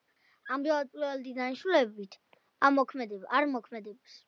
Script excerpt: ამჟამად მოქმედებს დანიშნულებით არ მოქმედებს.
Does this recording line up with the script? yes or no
no